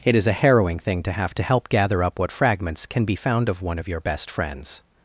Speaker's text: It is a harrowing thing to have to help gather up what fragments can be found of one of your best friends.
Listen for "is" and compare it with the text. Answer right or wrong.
right